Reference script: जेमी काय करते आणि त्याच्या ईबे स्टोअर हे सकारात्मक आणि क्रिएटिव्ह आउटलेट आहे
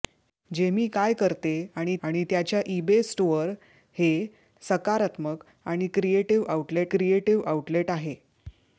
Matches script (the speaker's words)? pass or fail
fail